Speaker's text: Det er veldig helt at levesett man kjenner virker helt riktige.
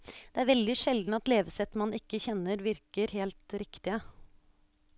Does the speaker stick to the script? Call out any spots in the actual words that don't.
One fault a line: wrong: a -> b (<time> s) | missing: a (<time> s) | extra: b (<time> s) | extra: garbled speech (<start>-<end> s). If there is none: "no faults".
wrong: helt -> sjelden (0.8 s)
extra: ikke (2.0 s)